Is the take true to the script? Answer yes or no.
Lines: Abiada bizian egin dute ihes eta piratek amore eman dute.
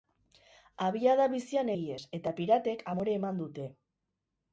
no